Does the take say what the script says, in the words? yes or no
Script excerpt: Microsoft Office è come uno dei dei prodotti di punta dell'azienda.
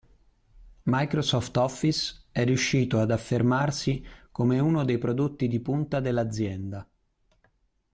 no